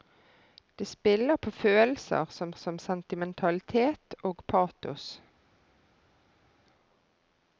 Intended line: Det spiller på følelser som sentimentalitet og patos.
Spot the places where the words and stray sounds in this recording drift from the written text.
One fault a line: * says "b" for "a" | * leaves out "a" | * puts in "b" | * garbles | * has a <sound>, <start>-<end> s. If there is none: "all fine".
* puts in "som"